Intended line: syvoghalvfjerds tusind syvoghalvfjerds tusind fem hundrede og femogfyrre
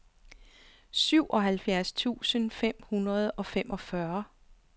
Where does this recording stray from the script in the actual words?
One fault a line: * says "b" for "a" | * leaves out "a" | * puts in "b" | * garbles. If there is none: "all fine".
* leaves out "syvoghalvfjerds tusind"